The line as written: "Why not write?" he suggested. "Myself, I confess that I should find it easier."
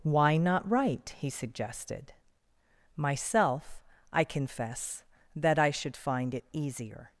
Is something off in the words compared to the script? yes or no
no